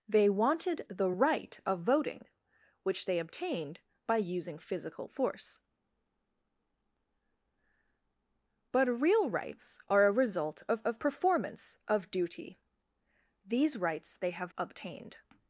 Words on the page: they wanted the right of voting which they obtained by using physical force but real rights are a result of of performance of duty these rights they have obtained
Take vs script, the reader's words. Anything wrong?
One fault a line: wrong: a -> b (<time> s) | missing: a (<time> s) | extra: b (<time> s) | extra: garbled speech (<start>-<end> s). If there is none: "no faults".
no faults